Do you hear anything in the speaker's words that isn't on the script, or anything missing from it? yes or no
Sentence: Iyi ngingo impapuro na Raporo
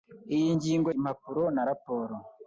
no